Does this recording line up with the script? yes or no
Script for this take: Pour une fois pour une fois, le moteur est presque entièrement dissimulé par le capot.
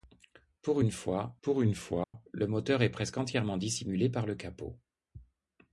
yes